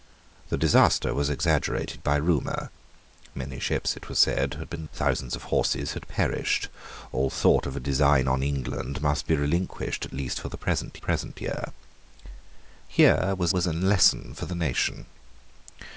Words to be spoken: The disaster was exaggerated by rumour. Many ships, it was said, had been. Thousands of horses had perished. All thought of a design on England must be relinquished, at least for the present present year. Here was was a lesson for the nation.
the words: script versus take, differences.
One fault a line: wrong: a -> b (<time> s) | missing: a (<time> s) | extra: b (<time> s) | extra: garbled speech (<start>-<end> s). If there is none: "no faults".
no faults